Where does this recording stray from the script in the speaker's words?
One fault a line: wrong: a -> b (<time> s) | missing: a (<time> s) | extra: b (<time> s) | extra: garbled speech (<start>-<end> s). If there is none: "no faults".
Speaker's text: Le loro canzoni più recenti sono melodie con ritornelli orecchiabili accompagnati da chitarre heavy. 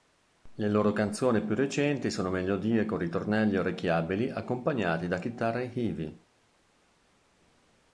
no faults